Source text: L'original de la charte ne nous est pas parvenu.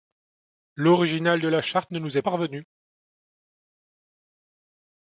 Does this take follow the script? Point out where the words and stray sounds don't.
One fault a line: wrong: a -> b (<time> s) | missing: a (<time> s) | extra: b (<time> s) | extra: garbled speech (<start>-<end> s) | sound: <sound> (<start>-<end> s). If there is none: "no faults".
missing: pas (2.2 s)